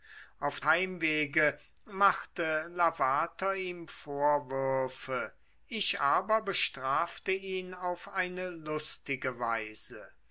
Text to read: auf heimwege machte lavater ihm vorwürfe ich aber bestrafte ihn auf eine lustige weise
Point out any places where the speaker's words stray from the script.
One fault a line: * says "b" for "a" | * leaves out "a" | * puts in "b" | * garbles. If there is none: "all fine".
all fine